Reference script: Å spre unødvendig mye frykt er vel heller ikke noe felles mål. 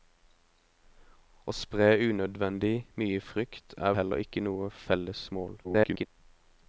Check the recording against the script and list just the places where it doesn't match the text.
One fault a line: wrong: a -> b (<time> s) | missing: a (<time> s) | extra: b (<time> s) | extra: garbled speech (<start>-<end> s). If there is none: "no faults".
missing: vel (3.9 s)
extra: garbled speech (5.6-6.1 s)